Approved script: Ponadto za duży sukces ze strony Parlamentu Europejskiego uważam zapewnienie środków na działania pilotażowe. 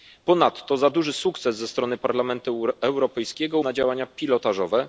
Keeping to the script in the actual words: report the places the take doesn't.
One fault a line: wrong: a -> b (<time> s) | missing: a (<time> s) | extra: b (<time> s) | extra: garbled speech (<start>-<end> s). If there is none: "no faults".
missing: uważam zapewnienie środków (3.6 s)